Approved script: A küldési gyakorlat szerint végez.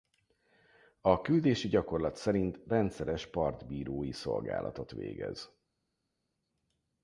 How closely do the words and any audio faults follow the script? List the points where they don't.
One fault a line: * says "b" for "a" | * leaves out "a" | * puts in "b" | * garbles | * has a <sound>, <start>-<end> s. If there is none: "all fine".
* puts in "rendszeres partbírói szolgálatot"